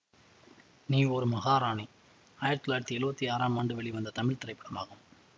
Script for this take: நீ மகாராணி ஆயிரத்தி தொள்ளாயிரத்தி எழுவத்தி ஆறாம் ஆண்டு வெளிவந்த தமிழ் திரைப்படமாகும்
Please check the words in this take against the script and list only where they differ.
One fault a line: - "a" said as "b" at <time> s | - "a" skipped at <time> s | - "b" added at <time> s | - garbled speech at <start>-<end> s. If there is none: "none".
- "ஒரு" added at 1.1 s